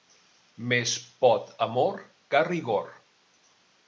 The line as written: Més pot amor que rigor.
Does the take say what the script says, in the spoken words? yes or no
yes